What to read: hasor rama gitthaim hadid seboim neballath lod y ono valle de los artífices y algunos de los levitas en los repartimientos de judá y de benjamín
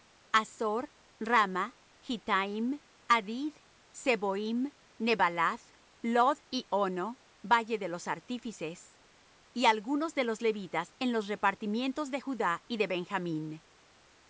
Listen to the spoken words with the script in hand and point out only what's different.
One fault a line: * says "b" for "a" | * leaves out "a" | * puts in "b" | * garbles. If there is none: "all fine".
all fine